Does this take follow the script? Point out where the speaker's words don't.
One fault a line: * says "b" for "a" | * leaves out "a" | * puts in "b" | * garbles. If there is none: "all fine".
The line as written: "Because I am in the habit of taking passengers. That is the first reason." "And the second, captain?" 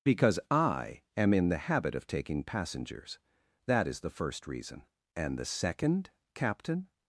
all fine